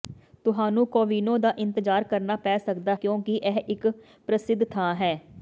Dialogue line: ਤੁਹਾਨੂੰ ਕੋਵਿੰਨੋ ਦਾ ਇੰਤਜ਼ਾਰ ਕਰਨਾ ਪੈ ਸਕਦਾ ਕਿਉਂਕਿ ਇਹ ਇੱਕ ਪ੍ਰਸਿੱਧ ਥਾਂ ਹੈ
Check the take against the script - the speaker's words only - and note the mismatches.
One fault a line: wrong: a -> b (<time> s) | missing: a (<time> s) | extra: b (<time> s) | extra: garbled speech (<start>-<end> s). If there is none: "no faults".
no faults